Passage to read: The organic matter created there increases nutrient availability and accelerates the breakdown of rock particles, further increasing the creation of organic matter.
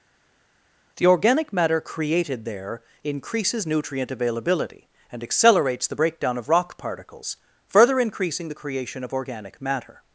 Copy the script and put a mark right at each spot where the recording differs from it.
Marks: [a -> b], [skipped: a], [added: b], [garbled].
The organic matter created there increases nutrient availability and accelerates the breakdown of rock particles, further increasing the creation of organic matter.